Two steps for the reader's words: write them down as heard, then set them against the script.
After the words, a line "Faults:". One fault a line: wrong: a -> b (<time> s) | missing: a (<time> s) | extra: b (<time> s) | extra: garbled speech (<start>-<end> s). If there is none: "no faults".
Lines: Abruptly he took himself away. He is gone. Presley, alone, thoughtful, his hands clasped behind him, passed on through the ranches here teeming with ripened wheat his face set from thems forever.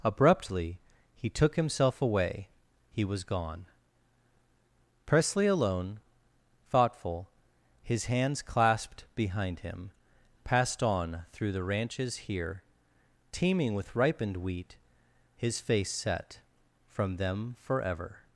Abruptly he took himself away. He was gone. Presley, alone, thoughtful, his hands clasped behind him, passed on through the ranches here teeming with ripened wheat his face set from them forever.
Faults:
wrong: is -> was (3.0 s)
wrong: thems -> them (17.2 s)